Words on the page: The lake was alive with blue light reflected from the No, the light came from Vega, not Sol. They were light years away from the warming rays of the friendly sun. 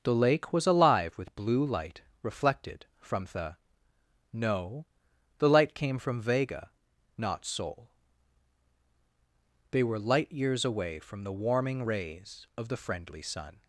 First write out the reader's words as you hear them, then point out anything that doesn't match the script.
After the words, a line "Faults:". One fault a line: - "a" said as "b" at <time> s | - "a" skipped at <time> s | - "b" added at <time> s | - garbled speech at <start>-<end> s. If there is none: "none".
The lake was alive with blue light reflected from the No, the light came from Vega, not Sol. They were light years away from the warming rays of the friendly sun.
Faults:
none